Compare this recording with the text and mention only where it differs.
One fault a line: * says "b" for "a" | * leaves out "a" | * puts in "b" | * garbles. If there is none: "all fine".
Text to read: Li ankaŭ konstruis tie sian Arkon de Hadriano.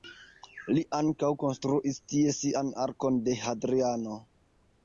all fine